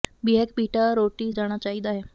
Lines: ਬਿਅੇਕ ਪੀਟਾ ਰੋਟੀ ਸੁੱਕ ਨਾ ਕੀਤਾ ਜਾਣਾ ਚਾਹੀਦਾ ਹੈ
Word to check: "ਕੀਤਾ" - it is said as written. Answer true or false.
false